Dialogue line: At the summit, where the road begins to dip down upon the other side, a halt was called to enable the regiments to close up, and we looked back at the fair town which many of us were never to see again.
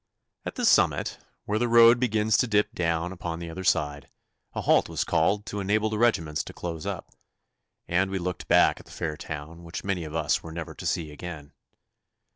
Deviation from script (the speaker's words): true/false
false